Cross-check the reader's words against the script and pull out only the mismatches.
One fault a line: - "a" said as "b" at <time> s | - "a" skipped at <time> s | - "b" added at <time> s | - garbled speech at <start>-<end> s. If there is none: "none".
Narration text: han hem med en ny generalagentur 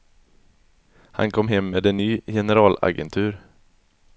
- "kom" added at 1.3 s